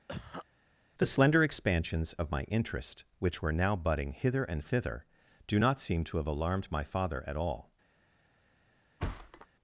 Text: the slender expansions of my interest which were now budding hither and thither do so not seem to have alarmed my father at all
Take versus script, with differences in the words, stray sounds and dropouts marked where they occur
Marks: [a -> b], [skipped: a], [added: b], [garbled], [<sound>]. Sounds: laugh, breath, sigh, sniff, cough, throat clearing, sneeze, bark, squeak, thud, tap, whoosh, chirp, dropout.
[cough] the slender expansions of my interest which were now budding hither and thither do [skipped: so] not seem to have alarmed my father at all [thud]